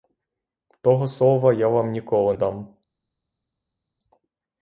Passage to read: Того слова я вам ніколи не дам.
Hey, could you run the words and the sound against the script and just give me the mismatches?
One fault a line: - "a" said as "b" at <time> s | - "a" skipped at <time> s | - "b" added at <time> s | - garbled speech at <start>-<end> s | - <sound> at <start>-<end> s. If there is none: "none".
- "не" skipped at 2.3 s